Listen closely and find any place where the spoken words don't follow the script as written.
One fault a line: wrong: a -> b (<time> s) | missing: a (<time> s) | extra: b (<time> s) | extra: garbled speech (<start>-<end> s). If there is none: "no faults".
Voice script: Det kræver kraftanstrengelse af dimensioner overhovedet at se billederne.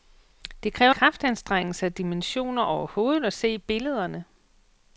no faults